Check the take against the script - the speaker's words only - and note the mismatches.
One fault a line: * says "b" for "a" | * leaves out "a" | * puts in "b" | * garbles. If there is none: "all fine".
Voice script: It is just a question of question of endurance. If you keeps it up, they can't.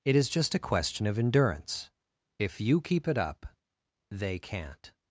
* leaves out "question of"
* says "keep" for "keeps"